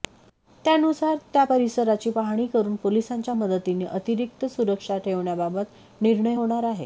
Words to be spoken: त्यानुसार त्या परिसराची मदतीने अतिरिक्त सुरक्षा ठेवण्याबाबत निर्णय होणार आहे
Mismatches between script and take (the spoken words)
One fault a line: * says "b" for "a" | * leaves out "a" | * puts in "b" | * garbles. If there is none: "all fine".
* puts in "पाहणी करून पोलिसांच्या"